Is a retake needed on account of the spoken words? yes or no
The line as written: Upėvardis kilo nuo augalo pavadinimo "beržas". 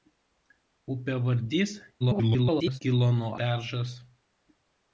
yes